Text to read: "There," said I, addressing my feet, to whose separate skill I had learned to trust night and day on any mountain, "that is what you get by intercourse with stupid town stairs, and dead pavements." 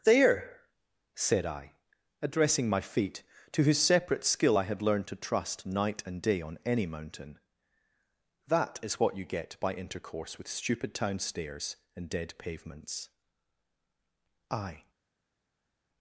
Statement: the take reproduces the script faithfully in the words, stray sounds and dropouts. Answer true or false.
false